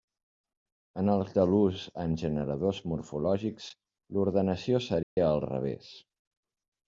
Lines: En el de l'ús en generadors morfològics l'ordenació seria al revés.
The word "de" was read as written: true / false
true